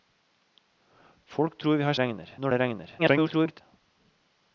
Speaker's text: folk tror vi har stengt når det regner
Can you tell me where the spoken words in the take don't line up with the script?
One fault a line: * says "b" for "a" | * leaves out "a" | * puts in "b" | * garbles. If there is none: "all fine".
* says "regner" for "stengt"
* garbles